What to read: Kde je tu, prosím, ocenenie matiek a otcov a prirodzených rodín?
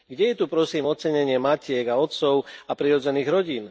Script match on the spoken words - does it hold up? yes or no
yes